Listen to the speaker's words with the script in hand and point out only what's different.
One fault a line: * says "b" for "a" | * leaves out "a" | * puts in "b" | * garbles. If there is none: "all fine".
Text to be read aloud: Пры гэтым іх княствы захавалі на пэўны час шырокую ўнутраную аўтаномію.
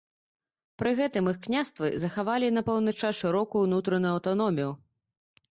all fine